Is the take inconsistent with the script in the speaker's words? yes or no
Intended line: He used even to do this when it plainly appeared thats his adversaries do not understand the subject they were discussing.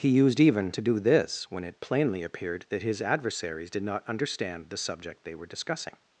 yes